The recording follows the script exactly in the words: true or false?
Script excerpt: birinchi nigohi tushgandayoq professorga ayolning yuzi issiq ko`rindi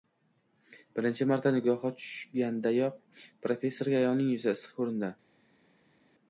false